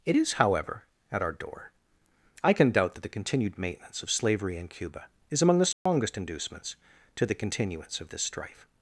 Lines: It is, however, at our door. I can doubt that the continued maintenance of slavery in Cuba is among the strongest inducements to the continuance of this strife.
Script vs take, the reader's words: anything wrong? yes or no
no